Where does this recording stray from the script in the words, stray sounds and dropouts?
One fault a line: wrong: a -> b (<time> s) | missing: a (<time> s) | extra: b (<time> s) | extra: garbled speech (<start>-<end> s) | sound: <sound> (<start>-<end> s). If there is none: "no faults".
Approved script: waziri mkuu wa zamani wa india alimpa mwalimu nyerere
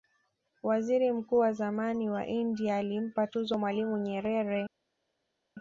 extra: tuzo (3.3 s)